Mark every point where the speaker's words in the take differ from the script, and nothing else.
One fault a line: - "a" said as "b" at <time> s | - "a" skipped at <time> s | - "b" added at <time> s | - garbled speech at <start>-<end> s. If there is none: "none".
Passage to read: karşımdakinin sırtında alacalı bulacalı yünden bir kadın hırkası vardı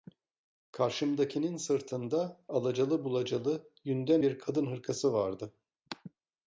none